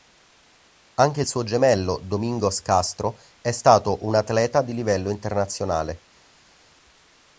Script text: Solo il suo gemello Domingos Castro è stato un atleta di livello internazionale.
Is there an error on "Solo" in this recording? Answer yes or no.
yes